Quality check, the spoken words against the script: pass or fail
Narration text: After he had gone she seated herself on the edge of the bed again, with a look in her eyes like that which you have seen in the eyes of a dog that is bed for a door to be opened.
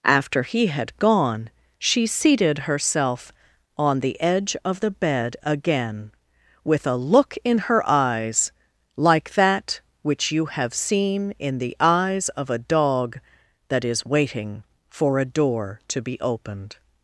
fail